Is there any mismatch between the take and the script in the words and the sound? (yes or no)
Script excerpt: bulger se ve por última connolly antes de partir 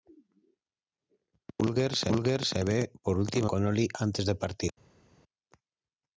no